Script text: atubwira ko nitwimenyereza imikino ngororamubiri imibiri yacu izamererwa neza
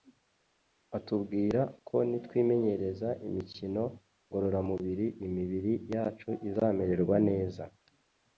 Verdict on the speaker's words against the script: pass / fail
pass